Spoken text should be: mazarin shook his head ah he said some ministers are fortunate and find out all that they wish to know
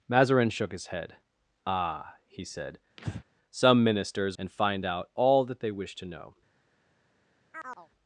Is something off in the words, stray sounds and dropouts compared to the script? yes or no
yes